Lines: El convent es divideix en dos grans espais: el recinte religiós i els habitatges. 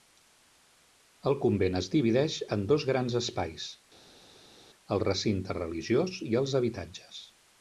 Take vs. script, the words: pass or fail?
pass